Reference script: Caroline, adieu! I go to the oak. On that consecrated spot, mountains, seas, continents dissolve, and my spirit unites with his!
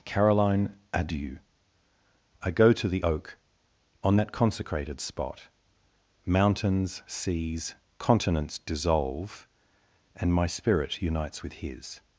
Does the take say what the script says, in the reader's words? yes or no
yes